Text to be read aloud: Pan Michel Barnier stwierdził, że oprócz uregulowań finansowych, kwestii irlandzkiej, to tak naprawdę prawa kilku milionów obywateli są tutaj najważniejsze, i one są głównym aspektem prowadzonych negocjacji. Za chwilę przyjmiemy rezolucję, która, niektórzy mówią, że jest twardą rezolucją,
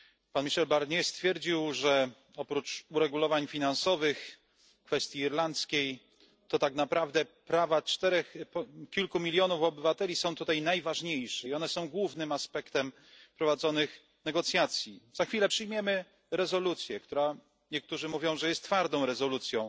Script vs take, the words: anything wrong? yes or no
no